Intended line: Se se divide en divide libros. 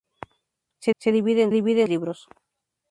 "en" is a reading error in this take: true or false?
false